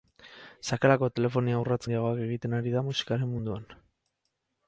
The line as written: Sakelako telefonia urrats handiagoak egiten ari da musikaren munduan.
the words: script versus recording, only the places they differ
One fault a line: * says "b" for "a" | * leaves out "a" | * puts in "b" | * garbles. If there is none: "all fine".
all fine